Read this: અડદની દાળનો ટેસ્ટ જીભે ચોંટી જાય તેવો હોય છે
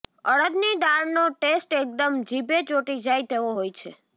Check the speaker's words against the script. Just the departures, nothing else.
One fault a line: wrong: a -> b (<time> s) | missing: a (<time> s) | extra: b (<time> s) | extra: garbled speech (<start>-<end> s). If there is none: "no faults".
extra: એકદમ (1.8 s)